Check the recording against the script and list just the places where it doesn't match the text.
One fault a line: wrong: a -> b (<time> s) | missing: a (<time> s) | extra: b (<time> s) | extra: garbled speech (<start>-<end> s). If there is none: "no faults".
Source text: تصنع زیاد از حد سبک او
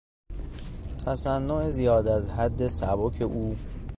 no faults